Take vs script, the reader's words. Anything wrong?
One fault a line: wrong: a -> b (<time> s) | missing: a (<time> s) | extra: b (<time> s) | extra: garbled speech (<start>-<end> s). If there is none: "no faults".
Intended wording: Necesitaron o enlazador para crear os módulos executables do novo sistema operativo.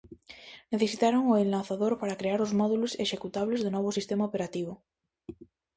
no faults